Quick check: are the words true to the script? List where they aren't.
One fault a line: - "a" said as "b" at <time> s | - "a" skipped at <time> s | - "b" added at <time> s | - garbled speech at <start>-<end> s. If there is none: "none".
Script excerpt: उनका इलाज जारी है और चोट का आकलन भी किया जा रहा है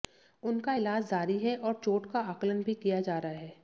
none